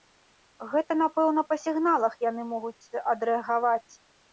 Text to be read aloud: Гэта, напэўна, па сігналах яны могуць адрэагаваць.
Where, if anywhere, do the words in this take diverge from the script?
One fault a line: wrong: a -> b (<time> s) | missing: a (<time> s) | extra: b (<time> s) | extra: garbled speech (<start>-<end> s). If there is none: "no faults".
no faults